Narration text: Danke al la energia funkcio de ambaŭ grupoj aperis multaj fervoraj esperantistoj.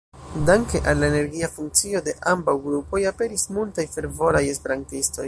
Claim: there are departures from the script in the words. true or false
false